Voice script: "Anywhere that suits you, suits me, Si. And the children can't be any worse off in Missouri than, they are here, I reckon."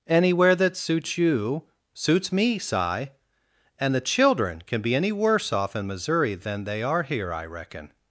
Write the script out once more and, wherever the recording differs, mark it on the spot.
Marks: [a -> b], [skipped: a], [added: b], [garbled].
"Anywhere that suits you, suits me, Si. And the children [can't -> can] be any worse off in Missouri than, they are here, I reckon."